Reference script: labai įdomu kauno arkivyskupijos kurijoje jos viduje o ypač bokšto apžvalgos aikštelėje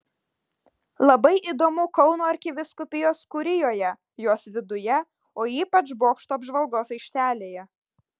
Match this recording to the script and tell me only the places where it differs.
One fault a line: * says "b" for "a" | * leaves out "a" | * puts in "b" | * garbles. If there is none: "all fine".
all fine